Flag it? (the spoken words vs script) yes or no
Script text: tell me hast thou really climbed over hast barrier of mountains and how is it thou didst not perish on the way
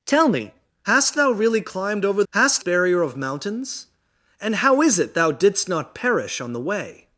no